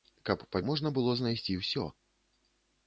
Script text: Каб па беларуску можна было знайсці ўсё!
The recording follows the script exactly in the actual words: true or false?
false